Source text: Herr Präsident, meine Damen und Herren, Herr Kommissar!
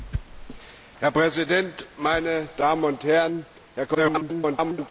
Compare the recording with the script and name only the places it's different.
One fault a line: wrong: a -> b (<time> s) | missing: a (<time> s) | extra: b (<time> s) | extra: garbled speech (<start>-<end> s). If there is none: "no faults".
extra: garbled speech (3.9-4.9 s)